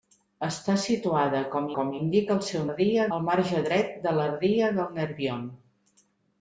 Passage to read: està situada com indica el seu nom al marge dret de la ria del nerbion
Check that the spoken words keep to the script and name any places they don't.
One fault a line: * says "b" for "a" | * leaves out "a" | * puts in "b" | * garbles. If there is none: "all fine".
* puts in "com"
* says "ria" for "nom"